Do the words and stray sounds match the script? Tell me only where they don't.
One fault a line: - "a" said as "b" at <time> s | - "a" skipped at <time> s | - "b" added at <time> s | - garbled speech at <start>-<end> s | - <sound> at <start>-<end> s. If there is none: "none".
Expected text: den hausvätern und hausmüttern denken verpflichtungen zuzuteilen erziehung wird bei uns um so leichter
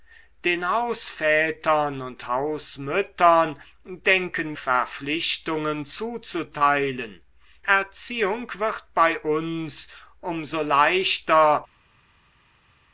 none